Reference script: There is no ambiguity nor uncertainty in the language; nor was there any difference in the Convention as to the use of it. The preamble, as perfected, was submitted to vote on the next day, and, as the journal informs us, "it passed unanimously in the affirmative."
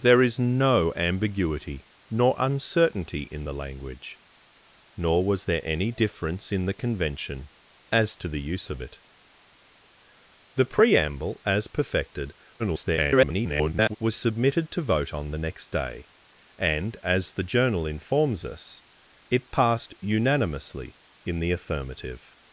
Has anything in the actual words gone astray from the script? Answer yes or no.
yes